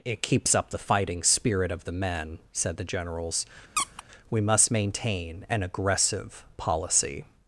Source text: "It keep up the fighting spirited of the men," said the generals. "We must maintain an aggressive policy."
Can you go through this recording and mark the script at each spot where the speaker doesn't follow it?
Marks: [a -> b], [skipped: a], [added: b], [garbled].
"It [keep -> keeps] up the fighting [spirited -> spirit] of the men," said the generals. "We must maintain an aggressive policy."